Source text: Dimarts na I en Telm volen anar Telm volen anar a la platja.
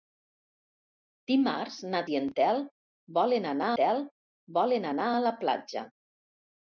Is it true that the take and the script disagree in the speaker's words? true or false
false